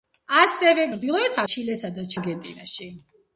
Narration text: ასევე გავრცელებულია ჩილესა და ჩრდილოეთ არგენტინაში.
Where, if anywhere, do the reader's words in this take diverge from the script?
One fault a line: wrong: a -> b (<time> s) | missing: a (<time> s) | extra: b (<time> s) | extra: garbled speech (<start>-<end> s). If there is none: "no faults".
wrong: გავრცელებულია -> ჩრდილოეთ (0.9 s)
missing: ჩრდილოეთ (2.1 s)